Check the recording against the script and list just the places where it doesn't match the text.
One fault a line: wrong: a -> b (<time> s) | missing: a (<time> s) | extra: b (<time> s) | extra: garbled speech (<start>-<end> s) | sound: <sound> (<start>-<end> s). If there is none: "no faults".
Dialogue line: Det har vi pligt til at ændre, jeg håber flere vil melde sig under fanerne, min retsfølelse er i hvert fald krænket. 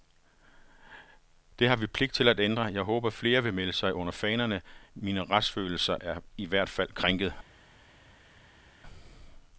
no faults